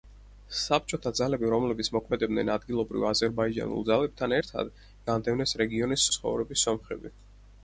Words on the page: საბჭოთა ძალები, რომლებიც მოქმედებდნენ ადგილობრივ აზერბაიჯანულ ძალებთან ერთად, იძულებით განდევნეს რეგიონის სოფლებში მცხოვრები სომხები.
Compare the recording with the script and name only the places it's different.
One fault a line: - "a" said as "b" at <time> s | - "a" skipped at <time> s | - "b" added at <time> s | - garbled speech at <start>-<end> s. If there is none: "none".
- "იძულებით" skipped at 4.7 s
- "სოფლებში" skipped at 6.1 s